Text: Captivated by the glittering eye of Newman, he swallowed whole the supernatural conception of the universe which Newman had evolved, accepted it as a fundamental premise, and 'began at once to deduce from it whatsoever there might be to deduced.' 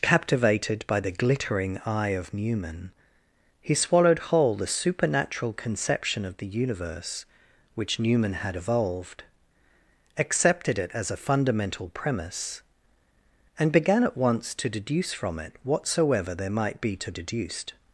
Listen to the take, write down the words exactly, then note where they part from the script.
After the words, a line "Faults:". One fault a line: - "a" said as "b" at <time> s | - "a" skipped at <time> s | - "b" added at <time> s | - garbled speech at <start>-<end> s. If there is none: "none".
Captivated by the glittering eye of Newman, he swallowed whole the supernatural conception of the universe which Newman had evolved, accepted it as a fundamental premise, and 'began at once to deduce from it whatsoever there might be to deduced.'
Faults:
none